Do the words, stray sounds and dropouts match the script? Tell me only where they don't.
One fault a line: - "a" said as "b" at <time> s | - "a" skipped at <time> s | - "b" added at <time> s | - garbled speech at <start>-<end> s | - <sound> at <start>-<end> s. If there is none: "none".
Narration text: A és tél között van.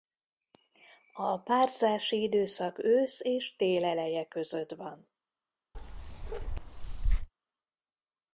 - "párzási időszak ősz" added at 1.4 s
- "eleje" added at 3.9 s
- bark at 5.7-7.3 s